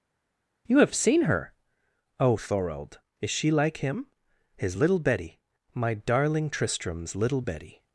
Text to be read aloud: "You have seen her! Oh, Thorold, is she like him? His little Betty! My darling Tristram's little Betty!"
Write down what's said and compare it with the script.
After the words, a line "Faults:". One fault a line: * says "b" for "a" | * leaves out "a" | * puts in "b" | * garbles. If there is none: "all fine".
"You have seen her! Oh, Thorold, is she like him? His little Betty! My darling Tristram's little Betty!"
Faults:
all fine